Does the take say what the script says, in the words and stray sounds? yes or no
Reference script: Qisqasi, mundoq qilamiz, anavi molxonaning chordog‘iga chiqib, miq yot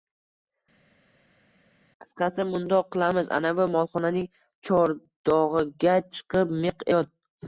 yes